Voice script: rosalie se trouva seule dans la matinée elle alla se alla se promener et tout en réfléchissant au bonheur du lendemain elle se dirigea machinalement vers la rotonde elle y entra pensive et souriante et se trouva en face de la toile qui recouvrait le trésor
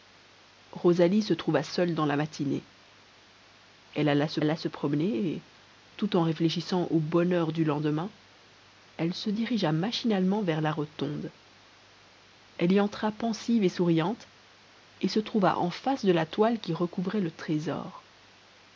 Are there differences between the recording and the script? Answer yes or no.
no